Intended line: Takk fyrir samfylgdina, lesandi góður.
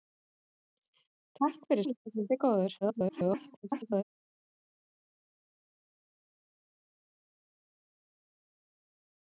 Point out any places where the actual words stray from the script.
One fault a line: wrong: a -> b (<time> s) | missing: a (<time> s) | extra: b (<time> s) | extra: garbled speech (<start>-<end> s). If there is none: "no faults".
missing: samfylgdina (1.9 s)
extra: garbled speech (2.8-4.0 s)